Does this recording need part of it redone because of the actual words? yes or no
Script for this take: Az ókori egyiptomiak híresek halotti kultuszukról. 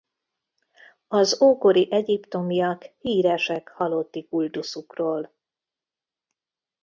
no